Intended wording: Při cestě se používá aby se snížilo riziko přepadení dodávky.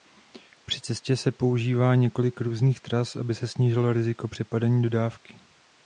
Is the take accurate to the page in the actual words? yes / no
no